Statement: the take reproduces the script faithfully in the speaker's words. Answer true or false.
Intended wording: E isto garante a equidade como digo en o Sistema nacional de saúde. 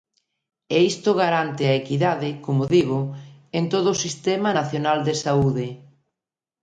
false